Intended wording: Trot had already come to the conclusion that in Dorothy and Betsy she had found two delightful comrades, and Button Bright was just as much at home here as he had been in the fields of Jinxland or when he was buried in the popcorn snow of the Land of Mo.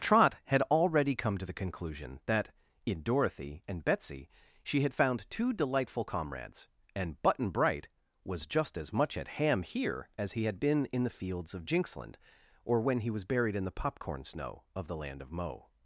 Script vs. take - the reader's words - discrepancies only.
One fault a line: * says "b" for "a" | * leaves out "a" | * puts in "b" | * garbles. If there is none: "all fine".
* says "ham" for "home"